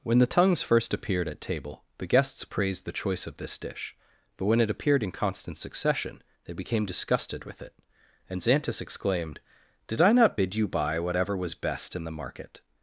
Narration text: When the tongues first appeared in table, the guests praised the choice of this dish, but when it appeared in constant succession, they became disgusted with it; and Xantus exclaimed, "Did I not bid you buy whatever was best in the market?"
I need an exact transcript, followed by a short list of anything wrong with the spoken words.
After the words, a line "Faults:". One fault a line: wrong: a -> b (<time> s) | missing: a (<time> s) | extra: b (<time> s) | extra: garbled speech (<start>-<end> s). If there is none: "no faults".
When the tongues first appeared at table, the guests praised the choice of this dish, but when it appeared in constant succession, they became disgusted with it; and Xantus exclaimed, "Did I not bid you buy whatever was best in the market?"
Faults:
wrong: in -> at (1.3 s)